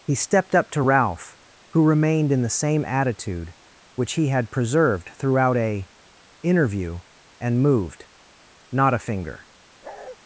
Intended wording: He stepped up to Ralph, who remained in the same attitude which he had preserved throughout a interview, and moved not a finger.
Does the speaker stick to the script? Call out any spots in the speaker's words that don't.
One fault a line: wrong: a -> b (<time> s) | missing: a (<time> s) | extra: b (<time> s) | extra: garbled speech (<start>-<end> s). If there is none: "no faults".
no faults